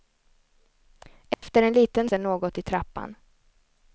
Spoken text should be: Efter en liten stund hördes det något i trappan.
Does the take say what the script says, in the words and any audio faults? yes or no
no